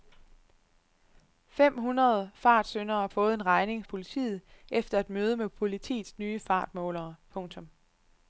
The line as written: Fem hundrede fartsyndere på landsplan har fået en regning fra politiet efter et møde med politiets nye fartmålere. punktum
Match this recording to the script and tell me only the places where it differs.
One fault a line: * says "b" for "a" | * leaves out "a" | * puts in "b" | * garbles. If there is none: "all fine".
* leaves out "på landsplan har"
* leaves out "fra"